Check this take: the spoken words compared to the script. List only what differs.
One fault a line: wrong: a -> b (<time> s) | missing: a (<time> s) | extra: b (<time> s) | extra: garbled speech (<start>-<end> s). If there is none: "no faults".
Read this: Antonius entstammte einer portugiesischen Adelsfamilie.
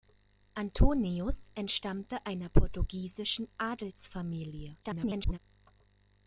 extra: garbled speech (4.8-5.4 s)